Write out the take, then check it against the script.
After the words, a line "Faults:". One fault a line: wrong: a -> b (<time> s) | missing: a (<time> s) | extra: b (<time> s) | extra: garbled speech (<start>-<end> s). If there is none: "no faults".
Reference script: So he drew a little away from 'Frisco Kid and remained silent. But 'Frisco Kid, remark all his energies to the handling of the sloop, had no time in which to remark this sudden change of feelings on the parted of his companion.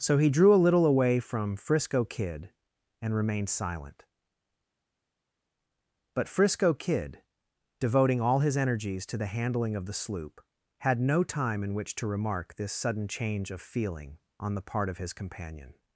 So he drew a little away from 'Frisco Kid and remained silent. But 'Frisco Kid, devoting all his energies to the handling of the sloop, had no time in which to remark this sudden change of feeling on the part of his companion.
Faults:
wrong: remark -> devoting (7.8 s)
wrong: feelings -> feeling (13.6 s)
wrong: parted -> part (14.7 s)